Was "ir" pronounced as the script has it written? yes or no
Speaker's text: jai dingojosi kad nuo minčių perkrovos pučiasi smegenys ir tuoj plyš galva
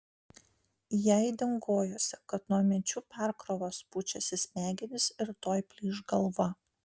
yes